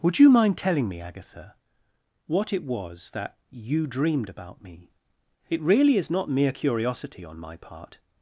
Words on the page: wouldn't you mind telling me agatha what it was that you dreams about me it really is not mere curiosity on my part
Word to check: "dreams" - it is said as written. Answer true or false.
false